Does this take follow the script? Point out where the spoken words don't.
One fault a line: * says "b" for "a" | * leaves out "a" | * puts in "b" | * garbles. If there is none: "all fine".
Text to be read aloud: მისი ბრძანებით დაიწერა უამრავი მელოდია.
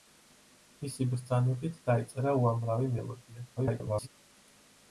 * garbles